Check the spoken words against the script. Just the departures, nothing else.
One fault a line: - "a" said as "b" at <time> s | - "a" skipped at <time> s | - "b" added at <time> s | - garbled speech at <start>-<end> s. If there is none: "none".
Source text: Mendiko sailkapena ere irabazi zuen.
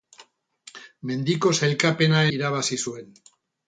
- "ere" skipped at 2.2 s